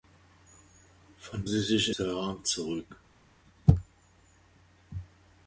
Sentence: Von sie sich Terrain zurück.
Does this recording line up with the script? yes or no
yes